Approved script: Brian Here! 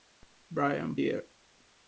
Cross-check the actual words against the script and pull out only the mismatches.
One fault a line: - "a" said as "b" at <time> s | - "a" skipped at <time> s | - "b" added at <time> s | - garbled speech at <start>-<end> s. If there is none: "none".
none